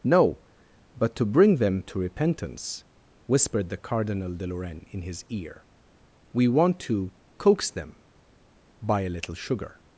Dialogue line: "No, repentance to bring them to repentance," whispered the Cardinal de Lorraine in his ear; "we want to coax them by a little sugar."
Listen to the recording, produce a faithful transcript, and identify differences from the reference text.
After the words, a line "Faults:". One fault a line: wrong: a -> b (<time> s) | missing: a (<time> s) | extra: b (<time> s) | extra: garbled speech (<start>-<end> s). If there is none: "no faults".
"No, but to bring them to repentance," whispered the Cardinal de Lorraine in his ear; "we want to coax them by a little sugar."
Faults:
wrong: repentance -> but (1.0 s)